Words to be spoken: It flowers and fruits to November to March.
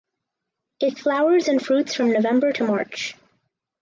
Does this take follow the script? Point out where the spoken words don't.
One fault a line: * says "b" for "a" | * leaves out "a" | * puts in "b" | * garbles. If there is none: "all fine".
* says "from" for "to"